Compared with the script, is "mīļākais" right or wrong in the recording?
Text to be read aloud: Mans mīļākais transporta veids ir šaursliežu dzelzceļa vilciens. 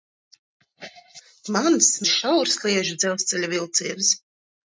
wrong